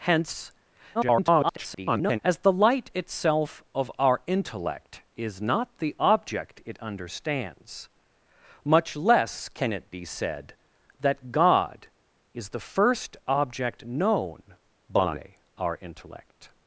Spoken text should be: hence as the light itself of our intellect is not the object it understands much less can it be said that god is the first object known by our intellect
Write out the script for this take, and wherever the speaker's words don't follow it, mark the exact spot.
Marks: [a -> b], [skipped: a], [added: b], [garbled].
hence [garbled] as the light itself of our intellect is not the object it understands much less can it be said that god is the first object known by our intellect